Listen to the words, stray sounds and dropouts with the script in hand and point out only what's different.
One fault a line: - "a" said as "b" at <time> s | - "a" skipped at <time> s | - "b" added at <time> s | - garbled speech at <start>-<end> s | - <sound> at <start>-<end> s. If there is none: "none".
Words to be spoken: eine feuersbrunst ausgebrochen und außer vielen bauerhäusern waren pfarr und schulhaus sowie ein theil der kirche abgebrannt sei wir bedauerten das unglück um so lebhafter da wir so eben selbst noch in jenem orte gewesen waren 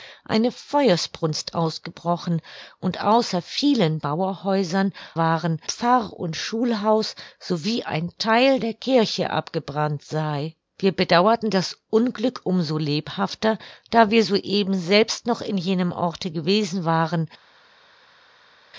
none